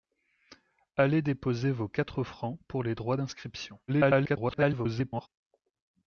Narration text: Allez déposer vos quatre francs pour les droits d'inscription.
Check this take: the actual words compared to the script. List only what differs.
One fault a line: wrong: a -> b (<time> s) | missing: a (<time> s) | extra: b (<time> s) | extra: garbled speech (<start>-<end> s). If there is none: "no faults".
extra: garbled speech (3.9-5.3 s)